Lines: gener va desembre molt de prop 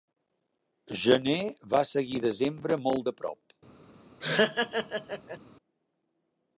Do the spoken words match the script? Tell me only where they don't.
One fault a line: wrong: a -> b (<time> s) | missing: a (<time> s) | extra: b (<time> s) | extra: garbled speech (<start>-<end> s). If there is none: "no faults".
extra: seguir (1.9 s)